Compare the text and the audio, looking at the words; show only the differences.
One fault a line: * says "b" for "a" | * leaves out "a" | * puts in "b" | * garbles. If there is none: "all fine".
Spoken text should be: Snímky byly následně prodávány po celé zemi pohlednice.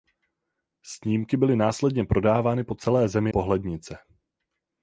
all fine